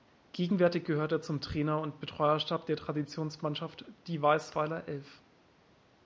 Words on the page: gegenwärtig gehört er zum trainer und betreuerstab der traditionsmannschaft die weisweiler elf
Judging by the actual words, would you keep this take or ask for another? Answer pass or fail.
pass